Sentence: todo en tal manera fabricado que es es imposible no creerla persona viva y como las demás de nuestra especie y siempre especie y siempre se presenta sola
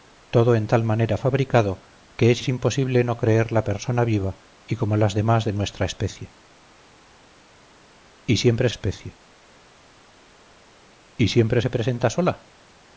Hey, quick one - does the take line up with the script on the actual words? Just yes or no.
yes